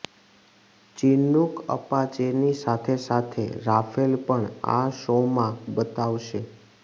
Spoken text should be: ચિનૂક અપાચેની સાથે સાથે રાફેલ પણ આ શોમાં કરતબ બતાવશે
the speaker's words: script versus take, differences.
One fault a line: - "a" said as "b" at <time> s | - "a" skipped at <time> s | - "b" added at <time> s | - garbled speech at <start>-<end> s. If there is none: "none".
- "કરતબ" skipped at 5.6 s